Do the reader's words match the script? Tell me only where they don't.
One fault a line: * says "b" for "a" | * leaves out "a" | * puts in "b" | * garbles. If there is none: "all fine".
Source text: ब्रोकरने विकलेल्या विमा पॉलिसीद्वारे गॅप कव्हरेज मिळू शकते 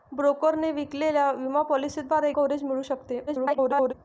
* leaves out "गॅप"
* garbles